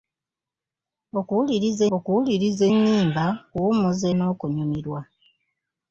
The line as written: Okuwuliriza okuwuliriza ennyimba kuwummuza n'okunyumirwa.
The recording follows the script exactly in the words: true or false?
true